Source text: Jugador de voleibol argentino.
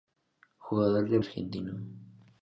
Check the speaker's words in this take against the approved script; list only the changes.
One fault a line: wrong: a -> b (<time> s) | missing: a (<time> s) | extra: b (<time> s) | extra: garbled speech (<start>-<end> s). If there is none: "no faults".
missing: voleibol (1.2 s)